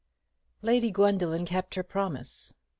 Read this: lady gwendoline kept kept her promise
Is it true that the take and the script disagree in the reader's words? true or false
true